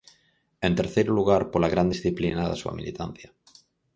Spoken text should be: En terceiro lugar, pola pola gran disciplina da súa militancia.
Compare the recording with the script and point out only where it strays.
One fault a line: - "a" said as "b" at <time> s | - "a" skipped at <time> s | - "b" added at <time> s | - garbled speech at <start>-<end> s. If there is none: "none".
- "pola" skipped at 1.7 s